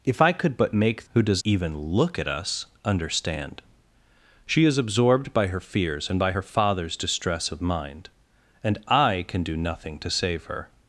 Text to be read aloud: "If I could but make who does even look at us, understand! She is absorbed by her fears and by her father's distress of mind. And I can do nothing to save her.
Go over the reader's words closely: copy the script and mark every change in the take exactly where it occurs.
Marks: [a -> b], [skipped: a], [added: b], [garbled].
"If I could but make who does even look at us, understand! She is absorbed by her fears and by her father's distress of mind. And I can do nothing to save her.